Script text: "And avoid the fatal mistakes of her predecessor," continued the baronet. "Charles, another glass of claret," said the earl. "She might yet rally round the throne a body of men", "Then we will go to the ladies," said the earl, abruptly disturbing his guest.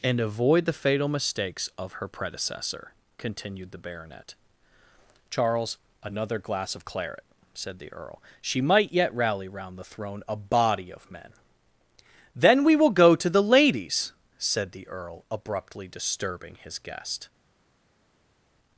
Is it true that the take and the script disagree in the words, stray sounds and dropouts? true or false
false